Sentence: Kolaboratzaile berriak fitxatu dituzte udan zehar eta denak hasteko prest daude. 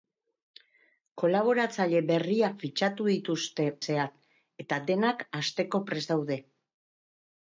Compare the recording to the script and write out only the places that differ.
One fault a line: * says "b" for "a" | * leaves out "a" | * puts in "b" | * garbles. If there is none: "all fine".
* leaves out "udan"